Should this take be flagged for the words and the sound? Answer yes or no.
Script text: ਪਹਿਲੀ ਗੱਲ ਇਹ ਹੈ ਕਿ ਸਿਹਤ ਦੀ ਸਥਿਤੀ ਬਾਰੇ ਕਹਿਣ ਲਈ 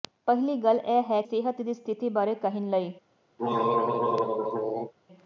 yes